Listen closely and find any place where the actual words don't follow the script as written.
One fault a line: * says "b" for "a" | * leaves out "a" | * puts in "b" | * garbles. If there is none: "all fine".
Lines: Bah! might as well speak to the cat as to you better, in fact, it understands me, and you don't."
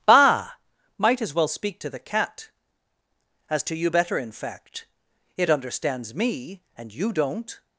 all fine